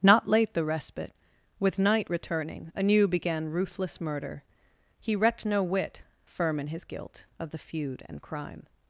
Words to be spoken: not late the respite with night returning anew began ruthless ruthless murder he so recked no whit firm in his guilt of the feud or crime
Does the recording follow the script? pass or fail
fail